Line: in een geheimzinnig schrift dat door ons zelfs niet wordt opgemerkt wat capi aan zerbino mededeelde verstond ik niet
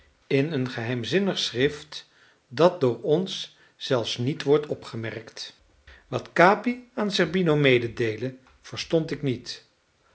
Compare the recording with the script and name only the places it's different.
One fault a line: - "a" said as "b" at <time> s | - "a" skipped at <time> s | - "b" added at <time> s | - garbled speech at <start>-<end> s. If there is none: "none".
none